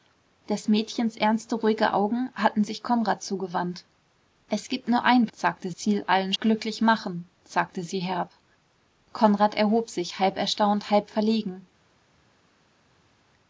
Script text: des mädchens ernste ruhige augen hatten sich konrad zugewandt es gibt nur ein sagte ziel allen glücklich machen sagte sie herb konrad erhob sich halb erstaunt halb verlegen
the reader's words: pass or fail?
pass